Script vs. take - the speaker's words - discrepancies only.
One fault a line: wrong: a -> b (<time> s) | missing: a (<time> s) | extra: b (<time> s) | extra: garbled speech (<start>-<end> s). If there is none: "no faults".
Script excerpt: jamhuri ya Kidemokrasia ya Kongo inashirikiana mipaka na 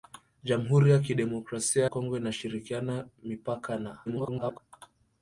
missing: ya (1.9 s)
extra: garbled speech (4.1-4.6 s)